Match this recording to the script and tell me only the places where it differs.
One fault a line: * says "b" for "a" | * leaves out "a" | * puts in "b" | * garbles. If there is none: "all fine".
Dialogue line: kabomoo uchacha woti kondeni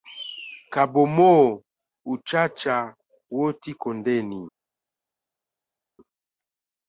all fine